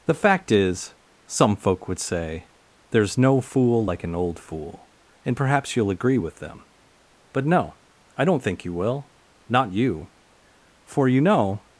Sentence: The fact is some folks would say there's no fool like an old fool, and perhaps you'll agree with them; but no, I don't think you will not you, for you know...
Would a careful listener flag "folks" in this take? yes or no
yes